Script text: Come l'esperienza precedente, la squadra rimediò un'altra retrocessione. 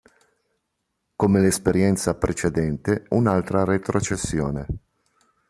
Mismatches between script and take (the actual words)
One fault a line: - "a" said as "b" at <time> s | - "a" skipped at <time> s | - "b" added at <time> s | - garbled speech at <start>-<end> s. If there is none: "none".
- "la squadra rimediò" skipped at 3.1 s